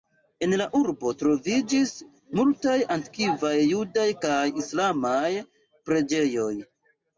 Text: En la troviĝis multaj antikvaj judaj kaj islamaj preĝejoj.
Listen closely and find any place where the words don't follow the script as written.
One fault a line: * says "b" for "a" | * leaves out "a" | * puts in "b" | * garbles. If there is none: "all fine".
* puts in "urbo"